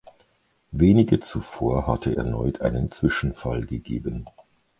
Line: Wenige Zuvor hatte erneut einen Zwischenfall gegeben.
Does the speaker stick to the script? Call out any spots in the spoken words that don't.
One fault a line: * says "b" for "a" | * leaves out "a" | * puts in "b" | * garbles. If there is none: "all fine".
all fine